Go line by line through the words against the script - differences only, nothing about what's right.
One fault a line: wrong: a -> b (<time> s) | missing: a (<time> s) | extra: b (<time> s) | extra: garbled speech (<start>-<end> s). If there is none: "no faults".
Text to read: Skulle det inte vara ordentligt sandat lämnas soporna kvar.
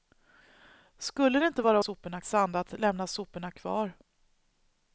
wrong: ordentligt -> soporna (1.8 s)